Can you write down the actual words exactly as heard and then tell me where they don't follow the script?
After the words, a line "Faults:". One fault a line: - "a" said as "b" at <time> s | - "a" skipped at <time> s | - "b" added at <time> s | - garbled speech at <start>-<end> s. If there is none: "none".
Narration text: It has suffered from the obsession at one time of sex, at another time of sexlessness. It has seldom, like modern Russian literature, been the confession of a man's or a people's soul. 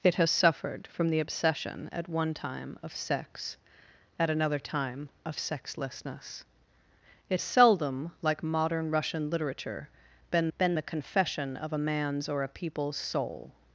It has suffered from the obsession at one time of sex, at another time of sexlessness. It seldom, like modern Russian literature, been been the confession of a man's or a people's soul.
Faults:
- "has" skipped at 7.4 s
- "been" added at 10.6 s